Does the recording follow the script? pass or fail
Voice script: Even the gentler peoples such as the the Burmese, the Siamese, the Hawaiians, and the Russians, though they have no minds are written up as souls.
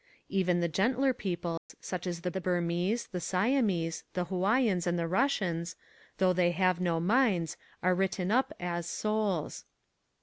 pass